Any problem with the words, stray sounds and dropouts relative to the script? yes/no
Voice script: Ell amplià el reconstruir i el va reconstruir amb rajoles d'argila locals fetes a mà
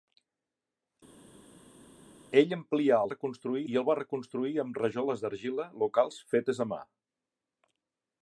no